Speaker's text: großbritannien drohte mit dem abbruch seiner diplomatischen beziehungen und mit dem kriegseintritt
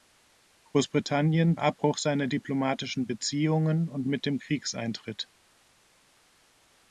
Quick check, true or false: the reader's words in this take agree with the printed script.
false